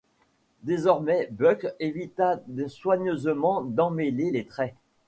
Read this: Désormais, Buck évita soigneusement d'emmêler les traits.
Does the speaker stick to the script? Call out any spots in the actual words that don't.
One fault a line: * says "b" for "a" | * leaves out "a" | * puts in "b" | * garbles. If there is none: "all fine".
all fine